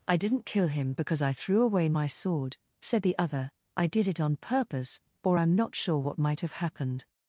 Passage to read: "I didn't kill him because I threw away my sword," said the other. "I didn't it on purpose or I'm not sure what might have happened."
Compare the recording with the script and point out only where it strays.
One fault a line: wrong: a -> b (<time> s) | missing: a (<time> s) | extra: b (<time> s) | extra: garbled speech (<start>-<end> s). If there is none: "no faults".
wrong: didn't -> did (3.9 s)